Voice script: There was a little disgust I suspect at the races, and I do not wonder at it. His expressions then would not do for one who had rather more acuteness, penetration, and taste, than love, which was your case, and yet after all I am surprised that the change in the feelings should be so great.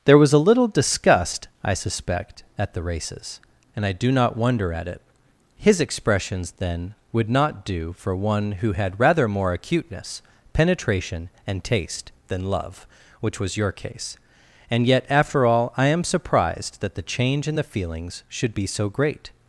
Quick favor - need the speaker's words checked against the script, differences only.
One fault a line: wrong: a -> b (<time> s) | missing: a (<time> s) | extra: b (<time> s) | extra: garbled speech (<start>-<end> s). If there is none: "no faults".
no faults